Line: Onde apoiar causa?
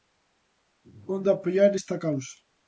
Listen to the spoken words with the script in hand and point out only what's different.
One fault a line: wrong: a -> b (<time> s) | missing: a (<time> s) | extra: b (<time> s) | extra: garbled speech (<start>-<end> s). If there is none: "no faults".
extra: esta (1.7 s)